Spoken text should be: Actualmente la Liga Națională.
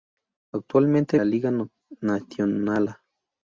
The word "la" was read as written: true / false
true